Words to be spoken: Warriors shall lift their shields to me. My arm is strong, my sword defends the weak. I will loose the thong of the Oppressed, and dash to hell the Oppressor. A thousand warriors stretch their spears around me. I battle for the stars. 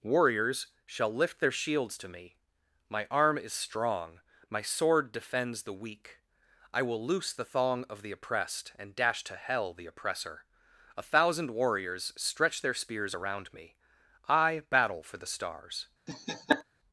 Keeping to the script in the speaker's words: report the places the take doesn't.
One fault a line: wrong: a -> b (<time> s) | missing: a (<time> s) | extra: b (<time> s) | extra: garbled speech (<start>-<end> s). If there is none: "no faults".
no faults